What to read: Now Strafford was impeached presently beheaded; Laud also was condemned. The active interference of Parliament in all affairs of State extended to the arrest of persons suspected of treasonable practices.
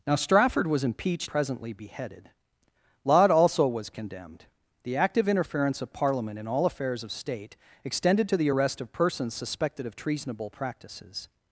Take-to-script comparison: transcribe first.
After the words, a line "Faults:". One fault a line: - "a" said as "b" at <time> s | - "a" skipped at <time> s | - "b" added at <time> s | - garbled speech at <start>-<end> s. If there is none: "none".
Now Strafford was impeached presently beheaded; Laud also was condemned. The active interference of Parliament in all affairs of State extended to the arrest of persons suspected of treasonable practices.
Faults:
none